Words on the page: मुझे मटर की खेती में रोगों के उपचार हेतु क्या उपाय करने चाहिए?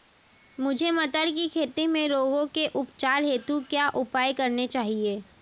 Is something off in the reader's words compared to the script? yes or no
no